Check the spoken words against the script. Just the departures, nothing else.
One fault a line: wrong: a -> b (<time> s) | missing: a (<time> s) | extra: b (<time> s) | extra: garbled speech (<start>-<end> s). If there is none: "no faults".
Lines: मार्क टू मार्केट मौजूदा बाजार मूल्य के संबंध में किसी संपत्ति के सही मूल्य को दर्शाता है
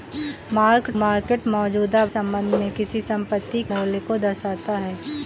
missing: टू (0.9 s)
missing: बाजार मूल्य के (2.0 s)
missing: के सही (3.6 s)